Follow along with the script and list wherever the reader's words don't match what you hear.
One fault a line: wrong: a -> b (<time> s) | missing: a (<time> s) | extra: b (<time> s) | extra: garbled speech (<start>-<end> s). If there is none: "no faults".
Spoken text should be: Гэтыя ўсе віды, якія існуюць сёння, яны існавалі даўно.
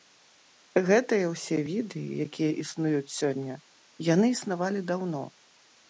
no faults